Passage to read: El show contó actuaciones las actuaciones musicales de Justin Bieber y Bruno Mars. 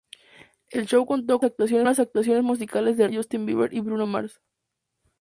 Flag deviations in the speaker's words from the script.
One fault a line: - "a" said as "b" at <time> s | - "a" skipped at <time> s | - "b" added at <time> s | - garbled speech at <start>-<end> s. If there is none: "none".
none